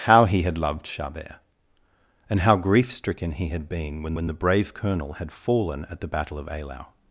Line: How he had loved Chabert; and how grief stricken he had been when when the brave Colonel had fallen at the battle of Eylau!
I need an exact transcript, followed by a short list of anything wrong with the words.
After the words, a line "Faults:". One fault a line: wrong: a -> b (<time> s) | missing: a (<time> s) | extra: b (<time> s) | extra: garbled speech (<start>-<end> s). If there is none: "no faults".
How he had loved Chabert; and how grief stricken he had been when when the brave Colonel had fallen at the battle of Eylau!
Faults:
no faults